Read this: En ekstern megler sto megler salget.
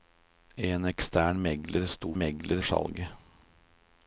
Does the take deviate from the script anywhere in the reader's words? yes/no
no